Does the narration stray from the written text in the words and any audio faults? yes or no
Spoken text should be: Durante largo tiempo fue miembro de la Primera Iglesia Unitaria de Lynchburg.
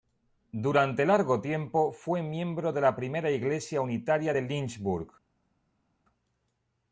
no